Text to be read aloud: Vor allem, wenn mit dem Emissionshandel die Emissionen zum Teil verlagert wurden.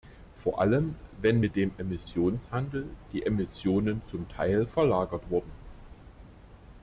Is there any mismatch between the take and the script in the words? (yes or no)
no